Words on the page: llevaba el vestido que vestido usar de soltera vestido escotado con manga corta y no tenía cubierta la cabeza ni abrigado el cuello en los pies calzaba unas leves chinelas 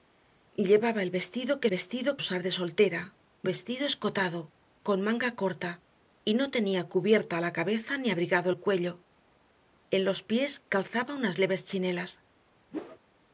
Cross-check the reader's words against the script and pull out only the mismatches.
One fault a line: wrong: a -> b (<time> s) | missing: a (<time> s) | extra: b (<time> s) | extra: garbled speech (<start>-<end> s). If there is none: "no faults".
no faults